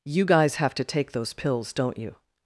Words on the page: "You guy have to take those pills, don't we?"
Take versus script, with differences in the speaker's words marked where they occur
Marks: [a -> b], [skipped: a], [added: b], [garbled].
"You [guy -> guys] have to take those pills, don't [we?" -> you]